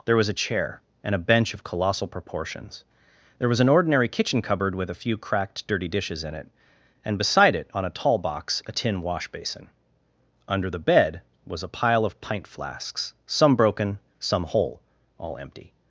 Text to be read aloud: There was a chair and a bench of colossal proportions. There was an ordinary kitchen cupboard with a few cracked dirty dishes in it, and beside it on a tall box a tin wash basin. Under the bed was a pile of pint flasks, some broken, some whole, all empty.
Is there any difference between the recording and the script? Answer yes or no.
no